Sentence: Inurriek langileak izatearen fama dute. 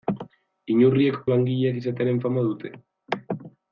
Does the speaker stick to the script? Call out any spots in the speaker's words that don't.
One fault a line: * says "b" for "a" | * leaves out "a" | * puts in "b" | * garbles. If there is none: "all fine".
all fine